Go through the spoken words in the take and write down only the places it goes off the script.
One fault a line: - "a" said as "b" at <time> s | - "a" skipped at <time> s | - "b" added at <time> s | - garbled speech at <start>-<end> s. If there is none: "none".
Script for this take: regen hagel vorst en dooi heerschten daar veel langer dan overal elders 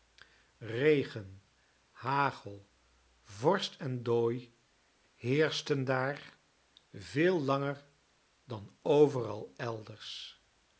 none